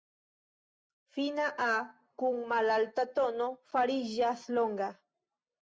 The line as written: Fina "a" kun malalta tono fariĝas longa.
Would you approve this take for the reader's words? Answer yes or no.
yes